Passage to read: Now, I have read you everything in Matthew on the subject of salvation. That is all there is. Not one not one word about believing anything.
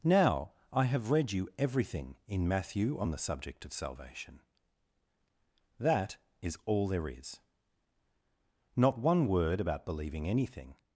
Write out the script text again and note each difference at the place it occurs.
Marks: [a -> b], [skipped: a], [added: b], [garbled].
Now, I have read you everything in Matthew on the subject of salvation. That is all there is. Not one [skipped: not one] word about believing anything.